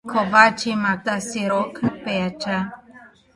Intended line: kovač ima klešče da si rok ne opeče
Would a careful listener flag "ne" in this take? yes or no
yes